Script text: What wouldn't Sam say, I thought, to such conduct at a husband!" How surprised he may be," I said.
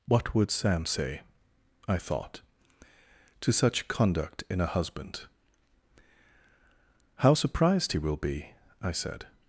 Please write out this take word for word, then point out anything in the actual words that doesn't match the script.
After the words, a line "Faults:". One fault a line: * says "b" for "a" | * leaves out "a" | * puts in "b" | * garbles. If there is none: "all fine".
What would Sam say, I thought, to such conduct in a husband!" How surprised he will be," I said.
Faults:
* says "would" for "wouldn't"
* says "in" for "at"
* says "will" for "may"